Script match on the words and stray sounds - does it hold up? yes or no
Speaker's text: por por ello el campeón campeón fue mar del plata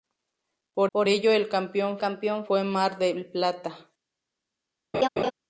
no